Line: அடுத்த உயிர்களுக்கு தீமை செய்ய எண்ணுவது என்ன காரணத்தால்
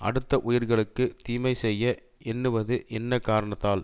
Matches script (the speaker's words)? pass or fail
pass